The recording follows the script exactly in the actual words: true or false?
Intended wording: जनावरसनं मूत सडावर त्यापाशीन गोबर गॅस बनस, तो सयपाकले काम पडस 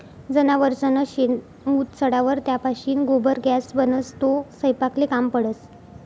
false